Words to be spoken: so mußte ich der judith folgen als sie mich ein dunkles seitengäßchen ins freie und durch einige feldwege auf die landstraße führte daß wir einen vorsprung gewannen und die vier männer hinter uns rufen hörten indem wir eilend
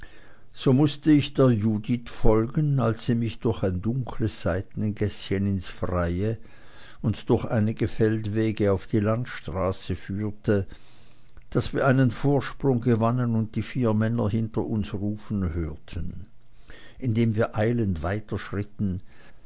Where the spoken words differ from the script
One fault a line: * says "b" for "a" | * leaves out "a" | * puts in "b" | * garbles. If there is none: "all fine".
* puts in "durch"